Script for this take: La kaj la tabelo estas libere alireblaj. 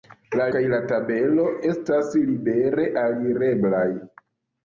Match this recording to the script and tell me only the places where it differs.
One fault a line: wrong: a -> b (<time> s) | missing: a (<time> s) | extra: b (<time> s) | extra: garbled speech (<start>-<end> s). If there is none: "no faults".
no faults